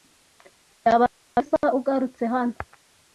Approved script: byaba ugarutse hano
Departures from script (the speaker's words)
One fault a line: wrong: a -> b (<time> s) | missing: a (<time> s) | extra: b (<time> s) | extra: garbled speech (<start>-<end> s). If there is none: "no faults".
extra: byiza (1.1 s)